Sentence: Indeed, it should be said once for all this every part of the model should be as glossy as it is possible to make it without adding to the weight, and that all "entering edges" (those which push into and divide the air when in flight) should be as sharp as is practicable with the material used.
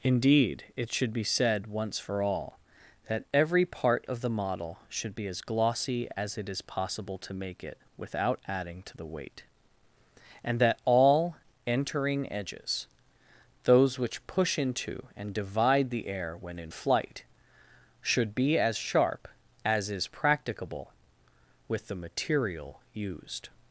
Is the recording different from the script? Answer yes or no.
yes